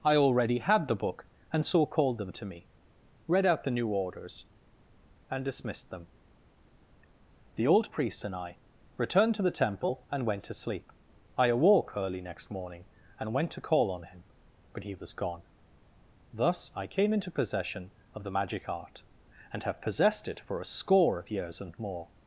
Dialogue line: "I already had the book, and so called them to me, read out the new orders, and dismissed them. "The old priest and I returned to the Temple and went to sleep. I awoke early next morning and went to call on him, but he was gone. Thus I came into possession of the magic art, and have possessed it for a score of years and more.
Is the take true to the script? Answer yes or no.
yes